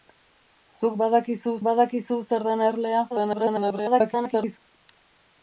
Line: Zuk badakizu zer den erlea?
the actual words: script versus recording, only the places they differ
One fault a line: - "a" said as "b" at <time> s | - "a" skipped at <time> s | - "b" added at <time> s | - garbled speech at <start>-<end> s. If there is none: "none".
- "badakizu" added at 1.7 s
- garbled speech at 3.1-4.6 s